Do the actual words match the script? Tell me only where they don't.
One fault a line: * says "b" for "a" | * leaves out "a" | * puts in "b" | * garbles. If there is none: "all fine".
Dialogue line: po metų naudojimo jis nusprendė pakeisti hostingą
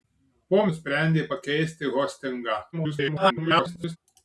* leaves out "metų naudojimo jis"
* garbles